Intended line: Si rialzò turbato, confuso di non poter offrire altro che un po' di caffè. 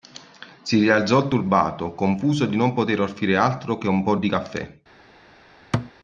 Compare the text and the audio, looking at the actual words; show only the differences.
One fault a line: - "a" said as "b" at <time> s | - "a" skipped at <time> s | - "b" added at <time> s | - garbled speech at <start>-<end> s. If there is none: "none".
none